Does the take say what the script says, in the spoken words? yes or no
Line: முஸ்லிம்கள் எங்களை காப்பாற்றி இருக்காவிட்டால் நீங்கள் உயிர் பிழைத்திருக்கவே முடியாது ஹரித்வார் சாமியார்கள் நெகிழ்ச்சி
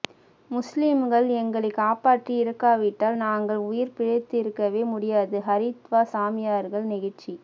no